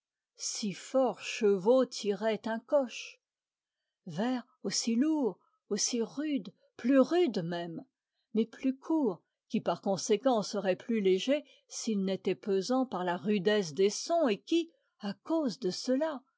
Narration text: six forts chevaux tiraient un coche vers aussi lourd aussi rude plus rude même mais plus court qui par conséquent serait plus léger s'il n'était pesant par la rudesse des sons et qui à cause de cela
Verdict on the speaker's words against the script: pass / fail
pass